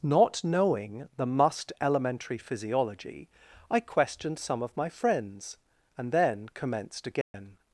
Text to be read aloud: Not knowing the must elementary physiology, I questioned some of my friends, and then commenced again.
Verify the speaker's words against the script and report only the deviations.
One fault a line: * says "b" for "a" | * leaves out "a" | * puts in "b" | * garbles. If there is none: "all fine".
all fine